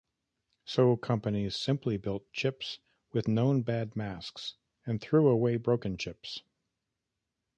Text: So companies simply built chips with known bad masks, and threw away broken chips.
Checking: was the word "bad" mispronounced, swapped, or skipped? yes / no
no